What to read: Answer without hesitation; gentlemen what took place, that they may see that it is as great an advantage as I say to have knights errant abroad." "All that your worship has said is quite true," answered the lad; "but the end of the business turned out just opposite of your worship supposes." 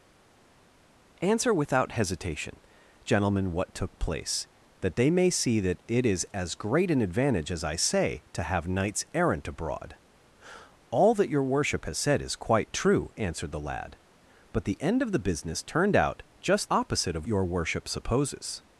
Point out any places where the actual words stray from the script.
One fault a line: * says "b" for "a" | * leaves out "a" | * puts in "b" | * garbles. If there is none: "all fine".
all fine